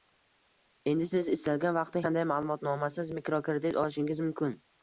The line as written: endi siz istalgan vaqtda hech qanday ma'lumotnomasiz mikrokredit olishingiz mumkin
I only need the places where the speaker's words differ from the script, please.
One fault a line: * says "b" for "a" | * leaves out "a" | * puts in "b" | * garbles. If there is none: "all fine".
* leaves out "hech"